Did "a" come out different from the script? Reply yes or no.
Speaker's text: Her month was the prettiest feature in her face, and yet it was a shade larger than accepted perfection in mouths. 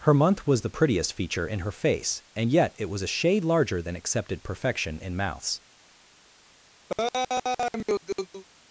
no